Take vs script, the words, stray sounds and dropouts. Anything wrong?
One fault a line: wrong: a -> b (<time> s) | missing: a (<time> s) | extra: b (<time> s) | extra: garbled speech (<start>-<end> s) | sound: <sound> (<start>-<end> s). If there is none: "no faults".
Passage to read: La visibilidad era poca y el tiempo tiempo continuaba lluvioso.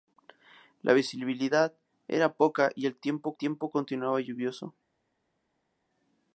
no faults